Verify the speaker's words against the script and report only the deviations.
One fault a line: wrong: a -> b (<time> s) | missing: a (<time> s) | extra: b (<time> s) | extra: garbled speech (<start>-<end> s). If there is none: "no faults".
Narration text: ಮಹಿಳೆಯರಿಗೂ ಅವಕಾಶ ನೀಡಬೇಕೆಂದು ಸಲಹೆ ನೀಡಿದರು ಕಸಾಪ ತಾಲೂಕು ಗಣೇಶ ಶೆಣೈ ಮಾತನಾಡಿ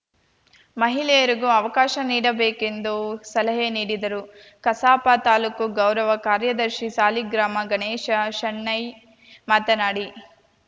extra: ಗೌರವ ಕಾರ್ಯದರ್ಶಿ ಸಾಲಿಗ್ರಾಮ (5.8 s)